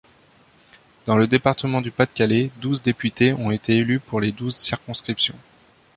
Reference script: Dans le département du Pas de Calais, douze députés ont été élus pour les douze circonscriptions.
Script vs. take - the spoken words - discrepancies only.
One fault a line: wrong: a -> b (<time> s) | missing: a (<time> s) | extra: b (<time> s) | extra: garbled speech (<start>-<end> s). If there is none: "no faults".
no faults